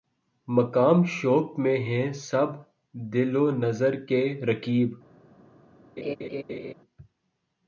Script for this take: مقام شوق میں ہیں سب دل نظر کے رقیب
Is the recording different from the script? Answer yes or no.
yes